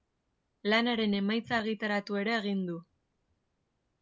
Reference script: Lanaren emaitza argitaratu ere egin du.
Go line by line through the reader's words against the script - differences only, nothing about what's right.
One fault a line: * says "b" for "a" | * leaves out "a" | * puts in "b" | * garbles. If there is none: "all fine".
all fine